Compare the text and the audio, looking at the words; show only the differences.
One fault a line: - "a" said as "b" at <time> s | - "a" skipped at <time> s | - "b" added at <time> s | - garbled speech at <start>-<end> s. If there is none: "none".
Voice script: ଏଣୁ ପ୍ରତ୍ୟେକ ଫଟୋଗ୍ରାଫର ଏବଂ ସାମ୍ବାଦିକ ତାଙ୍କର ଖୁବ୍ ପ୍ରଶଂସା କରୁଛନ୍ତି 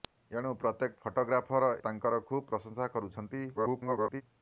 - "ଏବଂ ସାମ୍ବାଦିକ" skipped at 1.7 s
- garbled speech at 3.5-4.2 s